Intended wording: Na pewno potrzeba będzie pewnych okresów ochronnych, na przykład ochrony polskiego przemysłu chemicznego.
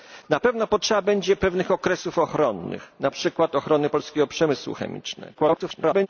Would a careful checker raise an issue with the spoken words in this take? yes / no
yes